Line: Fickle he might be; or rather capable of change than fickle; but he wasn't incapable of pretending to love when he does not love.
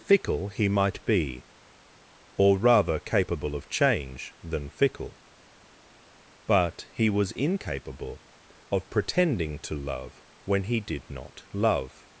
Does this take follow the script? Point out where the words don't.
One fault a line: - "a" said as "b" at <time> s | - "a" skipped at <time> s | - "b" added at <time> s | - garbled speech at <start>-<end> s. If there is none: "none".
- "wasn't" said as "was" at 7.1 s
- "does" said as "did" at 10.8 s